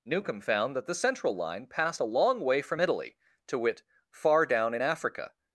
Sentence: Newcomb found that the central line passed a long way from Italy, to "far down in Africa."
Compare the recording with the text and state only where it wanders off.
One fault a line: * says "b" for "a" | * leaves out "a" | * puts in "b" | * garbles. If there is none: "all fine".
* puts in "wit"